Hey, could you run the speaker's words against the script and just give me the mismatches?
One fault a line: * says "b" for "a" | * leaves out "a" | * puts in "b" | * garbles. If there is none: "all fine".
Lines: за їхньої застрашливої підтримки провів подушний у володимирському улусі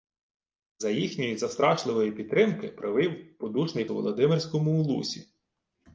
all fine